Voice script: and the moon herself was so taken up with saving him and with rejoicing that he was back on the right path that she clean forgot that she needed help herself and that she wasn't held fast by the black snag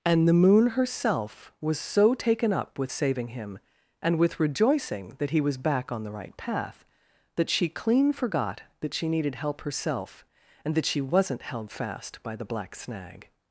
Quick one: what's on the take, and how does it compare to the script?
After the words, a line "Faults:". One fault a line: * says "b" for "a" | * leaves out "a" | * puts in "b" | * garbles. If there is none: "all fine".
and the moon herself was so taken up with saving him and with rejoicing that he was back on the right path that she clean forgot that she needed help herself and that she wasn't held fast by the black snag
Faults:
all fine